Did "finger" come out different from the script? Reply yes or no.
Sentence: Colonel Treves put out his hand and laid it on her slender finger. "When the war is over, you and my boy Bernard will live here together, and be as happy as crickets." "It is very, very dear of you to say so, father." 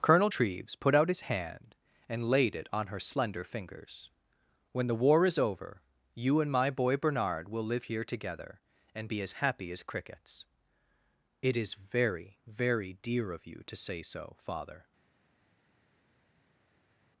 yes